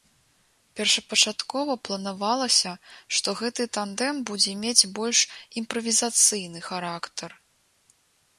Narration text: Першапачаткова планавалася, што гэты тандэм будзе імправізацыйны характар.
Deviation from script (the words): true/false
true